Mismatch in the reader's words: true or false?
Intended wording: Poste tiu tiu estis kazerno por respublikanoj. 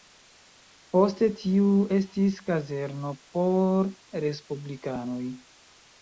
true